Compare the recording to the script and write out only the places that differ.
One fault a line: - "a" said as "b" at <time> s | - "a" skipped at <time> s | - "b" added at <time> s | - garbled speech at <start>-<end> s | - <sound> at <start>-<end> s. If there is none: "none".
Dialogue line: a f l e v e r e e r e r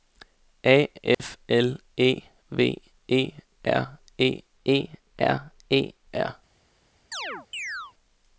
- dropout at 1.1-1.2 s
- chirp at 7.1-7.9 s